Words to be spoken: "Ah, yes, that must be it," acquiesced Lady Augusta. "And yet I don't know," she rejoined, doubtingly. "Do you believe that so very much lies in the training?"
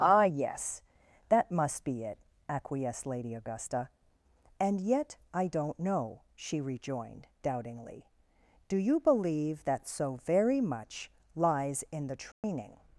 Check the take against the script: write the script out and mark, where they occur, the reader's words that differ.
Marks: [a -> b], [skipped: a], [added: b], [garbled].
"Ah, yes, that must be it," acquiesced Lady Augusta. "And yet I don't know," she rejoined, doubtingly. "Do you believe that so very much lies in the training?"